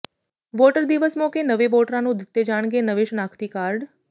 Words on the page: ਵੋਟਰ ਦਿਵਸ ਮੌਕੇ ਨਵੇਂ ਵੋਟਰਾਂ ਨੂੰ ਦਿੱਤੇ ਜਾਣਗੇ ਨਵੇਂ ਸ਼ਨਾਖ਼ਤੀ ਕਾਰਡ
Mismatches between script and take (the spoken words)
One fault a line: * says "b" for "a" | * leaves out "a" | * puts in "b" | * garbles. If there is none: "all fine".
all fine